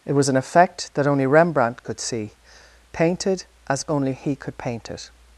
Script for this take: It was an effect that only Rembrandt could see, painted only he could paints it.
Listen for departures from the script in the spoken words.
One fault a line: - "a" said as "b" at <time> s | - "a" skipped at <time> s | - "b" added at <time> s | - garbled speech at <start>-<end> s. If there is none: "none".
- "as" added at 3.7 s
- "paints" said as "paint" at 4.6 s